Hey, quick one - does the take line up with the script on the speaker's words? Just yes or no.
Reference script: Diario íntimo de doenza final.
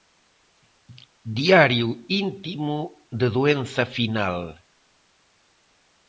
yes